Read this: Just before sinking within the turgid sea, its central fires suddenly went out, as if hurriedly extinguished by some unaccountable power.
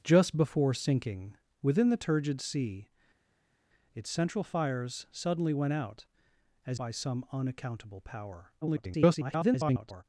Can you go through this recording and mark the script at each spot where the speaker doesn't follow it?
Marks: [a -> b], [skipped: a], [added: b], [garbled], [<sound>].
Just before sinking within the turgid sea, its central fires suddenly went out, as [skipped: if hurriedly extinguished] by some unaccountable power. [garbled]